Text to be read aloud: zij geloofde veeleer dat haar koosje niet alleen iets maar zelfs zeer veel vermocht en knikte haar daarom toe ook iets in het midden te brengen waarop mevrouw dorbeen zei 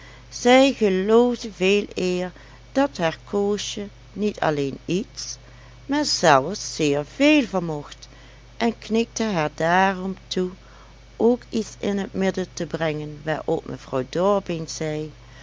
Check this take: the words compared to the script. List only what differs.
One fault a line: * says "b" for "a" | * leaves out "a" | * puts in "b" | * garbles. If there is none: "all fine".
all fine